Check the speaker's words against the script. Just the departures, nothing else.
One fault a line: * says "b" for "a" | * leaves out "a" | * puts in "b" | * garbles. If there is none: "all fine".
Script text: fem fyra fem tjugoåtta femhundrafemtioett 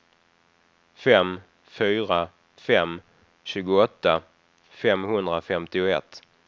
all fine